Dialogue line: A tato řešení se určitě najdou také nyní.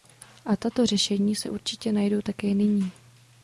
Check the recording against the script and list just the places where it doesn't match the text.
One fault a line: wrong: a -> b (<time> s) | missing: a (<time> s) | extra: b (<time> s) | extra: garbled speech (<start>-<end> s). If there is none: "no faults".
no faults